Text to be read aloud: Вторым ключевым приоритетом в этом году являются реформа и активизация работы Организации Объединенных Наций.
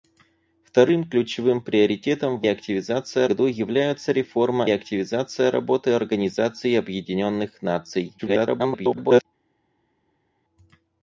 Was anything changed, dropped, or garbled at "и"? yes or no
yes